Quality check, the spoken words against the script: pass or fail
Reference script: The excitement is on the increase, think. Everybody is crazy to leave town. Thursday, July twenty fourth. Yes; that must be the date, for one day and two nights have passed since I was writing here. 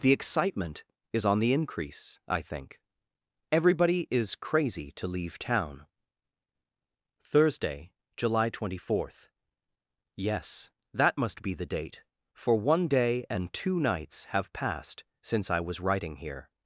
fail